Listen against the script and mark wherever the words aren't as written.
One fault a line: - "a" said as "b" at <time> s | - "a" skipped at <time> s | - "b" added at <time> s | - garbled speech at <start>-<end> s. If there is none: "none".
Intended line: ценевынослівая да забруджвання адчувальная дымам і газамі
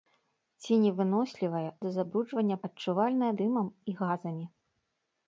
none